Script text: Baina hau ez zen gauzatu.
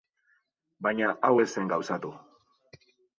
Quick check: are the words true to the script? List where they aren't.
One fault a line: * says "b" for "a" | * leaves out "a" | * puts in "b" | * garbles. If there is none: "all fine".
all fine